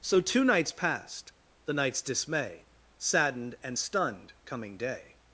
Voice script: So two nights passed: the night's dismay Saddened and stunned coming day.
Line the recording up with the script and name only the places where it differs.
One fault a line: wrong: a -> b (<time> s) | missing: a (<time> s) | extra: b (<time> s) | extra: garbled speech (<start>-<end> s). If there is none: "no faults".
no faults